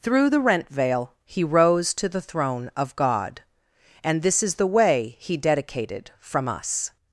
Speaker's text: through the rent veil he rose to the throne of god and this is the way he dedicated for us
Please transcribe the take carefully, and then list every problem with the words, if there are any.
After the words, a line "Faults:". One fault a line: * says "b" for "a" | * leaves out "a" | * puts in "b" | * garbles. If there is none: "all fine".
through the rent veil he rose to the throne of god and this is the way he dedicated from us
Faults:
* says "from" for "for"